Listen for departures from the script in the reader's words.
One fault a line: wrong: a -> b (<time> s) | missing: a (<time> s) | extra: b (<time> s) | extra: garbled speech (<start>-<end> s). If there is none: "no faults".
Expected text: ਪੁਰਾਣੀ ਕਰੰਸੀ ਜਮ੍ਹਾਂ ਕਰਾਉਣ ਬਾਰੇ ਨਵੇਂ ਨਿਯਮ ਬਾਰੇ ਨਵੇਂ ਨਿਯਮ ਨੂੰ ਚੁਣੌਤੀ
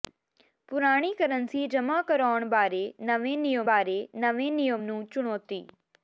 no faults